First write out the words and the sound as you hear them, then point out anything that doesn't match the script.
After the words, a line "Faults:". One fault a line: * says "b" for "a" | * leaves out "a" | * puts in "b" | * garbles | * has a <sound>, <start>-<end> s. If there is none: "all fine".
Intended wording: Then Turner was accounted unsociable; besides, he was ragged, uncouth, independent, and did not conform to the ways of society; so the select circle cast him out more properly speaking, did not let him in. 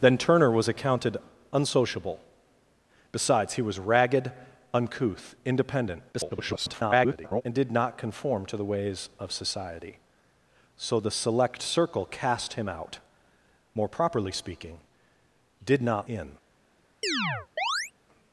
Then Turner was accounted unsociable; besides, he was ragged, uncouth, independent, [garbled] and did not conform to the ways of society; so the select circle cast him out more properly speaking, did not in.
Faults:
* garbles
* leaves out "let him"
* has a chirp, 17.0-17.9 s